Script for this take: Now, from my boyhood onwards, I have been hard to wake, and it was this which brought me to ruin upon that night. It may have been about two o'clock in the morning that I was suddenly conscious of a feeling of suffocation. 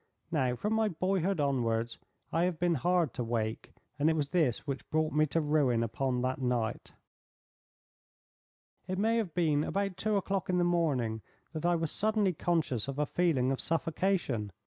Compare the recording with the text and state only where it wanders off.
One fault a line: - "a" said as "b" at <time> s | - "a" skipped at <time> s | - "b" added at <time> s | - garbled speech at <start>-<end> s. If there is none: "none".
none